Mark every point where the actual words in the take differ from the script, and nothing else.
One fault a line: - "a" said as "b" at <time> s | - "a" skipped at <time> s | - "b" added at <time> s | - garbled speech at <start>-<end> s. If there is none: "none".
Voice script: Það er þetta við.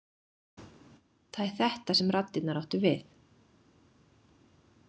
- "sem raddirnar áttu" added at 2.0 s